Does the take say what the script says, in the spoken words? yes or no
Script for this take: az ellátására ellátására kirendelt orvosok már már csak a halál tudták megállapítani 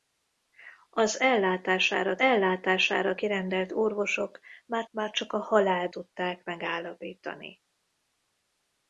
yes